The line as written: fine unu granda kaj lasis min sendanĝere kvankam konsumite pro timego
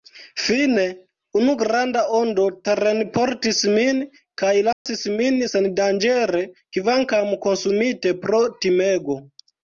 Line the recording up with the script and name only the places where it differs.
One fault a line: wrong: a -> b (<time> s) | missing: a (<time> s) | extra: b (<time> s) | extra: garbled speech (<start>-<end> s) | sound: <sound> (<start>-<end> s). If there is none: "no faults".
extra: ondo terenportis min (2.2 s)
sound: dropout (4.7-4.9 s)